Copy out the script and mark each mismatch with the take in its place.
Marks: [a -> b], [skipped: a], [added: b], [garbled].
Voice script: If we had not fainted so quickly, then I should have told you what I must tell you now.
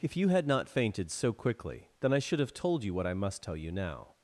If [we -> you] had not fainted so quickly, then I should have told you what I must tell you now.